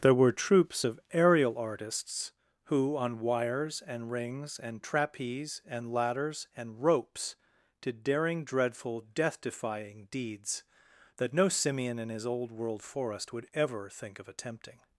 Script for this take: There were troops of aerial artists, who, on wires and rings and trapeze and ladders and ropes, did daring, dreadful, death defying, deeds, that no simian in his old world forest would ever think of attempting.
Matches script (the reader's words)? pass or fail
pass